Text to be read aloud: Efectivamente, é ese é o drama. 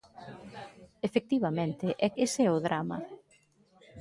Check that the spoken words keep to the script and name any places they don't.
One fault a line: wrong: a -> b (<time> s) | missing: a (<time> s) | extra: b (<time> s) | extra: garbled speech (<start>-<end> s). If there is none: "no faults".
no faults